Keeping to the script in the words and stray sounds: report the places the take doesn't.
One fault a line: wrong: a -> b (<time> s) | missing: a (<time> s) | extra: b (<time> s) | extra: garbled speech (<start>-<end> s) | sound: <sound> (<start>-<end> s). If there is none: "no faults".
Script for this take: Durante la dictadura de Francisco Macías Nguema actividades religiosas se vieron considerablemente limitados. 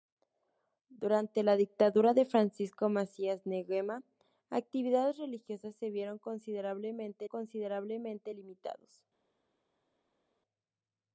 extra: considerablemente (7.2 s)